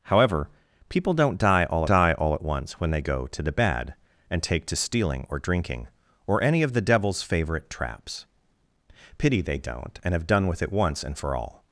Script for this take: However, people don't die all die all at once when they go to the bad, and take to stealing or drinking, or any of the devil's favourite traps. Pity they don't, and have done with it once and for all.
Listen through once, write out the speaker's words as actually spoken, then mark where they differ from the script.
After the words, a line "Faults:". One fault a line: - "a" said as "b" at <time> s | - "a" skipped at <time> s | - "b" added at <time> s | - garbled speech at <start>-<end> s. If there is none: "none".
However, people don't die all die all at once when they go to the bad, and take to stealing or drinking, or any of the devil's favourite traps. Pity they don't, and have done with it once and for all.
Faults:
none